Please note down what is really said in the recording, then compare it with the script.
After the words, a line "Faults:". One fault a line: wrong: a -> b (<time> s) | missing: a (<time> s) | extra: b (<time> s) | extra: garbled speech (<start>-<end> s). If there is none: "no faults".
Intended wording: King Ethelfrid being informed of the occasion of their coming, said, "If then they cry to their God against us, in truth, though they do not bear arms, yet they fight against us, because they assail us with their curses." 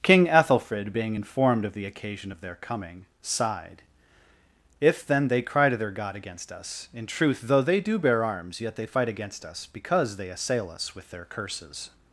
King Ethelfrid being informed of the occasion of their coming, sighed, "If then they cry to their God against us, in truth, though they do bear arms, yet they fight against us, because they assail us with their curses."
Faults:
wrong: said -> sighed (3.2 s)
missing: not (8.0 s)